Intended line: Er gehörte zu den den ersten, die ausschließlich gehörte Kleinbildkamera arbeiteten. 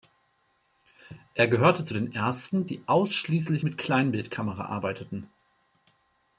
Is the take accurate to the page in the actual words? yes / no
no